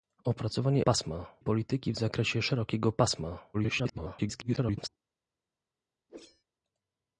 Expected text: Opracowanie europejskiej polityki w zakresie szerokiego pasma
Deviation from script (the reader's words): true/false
true